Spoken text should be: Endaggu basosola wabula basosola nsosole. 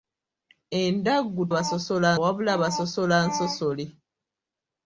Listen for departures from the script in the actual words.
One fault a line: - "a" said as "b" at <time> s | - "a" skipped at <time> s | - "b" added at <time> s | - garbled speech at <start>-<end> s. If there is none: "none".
none